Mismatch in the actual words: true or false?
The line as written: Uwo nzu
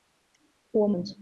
false